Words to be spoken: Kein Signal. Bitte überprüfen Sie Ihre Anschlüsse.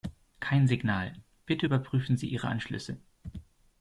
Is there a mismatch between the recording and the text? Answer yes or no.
no